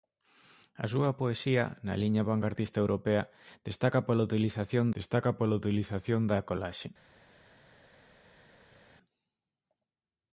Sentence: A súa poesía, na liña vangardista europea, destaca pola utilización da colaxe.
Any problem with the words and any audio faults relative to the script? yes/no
yes